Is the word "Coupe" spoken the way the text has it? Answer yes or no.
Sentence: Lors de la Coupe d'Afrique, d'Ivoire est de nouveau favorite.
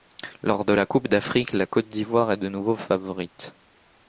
yes